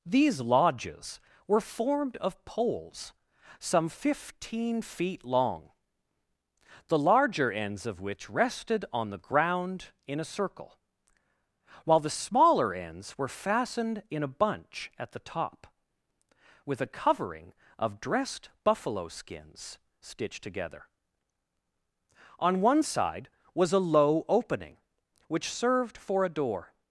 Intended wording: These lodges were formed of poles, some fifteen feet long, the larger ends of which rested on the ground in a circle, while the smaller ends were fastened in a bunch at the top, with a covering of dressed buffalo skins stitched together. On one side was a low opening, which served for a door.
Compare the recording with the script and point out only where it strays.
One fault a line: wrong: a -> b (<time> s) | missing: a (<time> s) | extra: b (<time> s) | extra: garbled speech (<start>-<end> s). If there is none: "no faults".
no faults